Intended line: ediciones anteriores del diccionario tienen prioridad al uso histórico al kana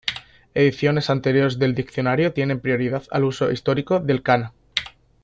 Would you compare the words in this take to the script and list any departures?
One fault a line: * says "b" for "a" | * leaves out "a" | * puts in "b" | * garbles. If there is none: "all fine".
* says "del" for "al"